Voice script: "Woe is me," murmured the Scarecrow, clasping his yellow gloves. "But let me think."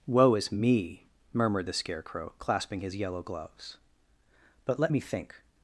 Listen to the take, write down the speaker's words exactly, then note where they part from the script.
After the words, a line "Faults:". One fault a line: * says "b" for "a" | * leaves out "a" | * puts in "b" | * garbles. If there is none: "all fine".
"Woe is me," murmured the Scarecrow, clasping his yellow gloves. "But let me think."
Faults:
all fine